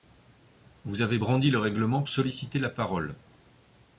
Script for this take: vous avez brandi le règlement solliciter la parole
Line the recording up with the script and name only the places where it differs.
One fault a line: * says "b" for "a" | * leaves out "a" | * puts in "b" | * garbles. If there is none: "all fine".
all fine